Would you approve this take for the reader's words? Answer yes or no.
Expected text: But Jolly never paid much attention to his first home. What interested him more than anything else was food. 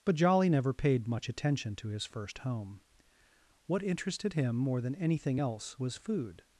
yes